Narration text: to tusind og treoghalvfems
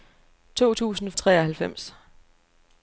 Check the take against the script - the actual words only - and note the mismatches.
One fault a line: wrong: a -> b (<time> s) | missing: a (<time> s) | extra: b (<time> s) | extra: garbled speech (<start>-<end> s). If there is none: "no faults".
no faults